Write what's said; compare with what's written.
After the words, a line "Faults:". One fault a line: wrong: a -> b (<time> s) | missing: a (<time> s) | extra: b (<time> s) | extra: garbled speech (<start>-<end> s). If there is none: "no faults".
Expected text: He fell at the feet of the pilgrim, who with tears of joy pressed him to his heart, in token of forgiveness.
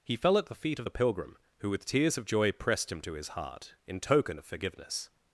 He fell at the feet of the pilgrim, who with tears of joy pressed him to his heart, in token of forgiveness.
Faults:
no faults